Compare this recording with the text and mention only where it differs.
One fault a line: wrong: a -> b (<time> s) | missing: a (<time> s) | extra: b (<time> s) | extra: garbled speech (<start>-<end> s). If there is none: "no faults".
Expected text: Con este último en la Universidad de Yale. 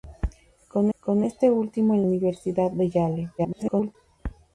extra: con (1.0 s)
missing: la (2.0 s)
extra: garbled speech (3.4-4.0 s)